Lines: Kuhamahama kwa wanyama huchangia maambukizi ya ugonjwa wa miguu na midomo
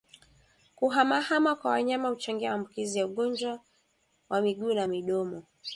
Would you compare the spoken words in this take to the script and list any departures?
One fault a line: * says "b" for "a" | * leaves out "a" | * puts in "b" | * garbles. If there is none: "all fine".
all fine